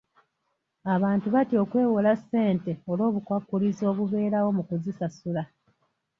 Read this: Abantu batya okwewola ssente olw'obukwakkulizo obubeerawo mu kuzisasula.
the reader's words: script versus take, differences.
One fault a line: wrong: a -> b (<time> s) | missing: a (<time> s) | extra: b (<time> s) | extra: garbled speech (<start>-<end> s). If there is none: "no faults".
no faults